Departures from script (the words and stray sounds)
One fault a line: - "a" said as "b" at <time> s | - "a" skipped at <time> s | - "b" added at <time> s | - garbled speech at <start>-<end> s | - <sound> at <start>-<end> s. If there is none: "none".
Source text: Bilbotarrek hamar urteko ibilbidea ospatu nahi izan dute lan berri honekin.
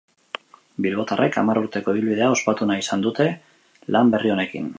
none